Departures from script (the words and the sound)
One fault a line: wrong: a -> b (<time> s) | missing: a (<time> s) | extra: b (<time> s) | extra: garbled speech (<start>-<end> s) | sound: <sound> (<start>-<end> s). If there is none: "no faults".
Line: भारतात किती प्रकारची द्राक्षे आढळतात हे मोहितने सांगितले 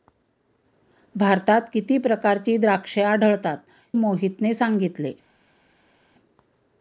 missing: हे (3.6 s)